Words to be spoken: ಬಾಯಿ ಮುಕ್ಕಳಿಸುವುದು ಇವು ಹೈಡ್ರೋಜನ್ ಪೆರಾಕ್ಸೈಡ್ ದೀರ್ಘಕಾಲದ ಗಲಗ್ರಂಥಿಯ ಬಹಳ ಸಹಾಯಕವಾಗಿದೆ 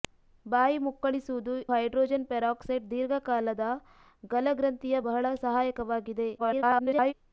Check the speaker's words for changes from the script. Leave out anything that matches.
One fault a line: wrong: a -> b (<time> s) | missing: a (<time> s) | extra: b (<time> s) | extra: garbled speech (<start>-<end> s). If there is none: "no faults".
missing: ಇವು (1.6 s)
extra: garbled speech (6.4-7.1 s)